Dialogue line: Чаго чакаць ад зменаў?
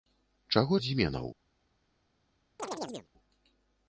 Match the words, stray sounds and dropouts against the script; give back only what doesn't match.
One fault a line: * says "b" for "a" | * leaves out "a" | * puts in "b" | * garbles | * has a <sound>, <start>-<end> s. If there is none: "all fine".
* leaves out "чакаць"
* has a chirp, 2.6-3.1 s